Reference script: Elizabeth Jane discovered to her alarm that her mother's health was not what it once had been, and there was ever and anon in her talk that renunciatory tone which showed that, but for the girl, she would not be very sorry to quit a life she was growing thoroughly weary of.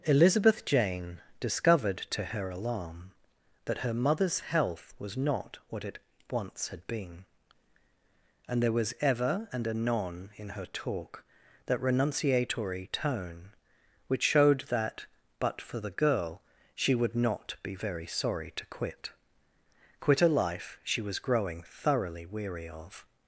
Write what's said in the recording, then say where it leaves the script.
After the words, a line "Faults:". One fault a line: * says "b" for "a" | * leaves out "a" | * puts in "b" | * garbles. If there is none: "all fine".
Elizabeth Jane discovered to her alarm that her mother's health was not what it once had been, and there was ever and anon in her talk that renunciatory tone which showed that, but for the girl, she would not be very sorry to quit quit a life she was growing thoroughly weary of.
Faults:
* puts in "quit"